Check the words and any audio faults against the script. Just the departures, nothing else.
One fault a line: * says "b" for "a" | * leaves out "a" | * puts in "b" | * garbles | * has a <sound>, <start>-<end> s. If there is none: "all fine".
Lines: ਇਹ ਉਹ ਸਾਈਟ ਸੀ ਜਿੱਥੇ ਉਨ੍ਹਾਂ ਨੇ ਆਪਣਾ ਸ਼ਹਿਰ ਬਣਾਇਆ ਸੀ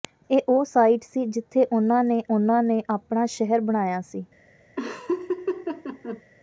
* puts in "ਉਨ੍ਹਾਂ ਨੇ"
* has a laugh, 4.8-6.2 s